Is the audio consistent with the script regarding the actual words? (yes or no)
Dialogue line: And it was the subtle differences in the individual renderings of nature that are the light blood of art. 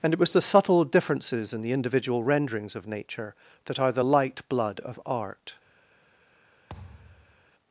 yes